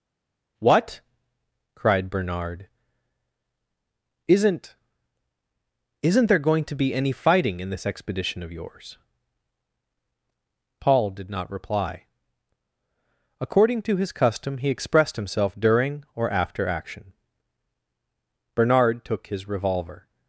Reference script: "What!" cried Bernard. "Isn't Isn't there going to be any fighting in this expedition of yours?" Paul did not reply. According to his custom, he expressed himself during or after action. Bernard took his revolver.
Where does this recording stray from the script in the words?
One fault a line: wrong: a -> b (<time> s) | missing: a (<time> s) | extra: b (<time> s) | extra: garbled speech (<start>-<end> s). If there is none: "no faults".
no faults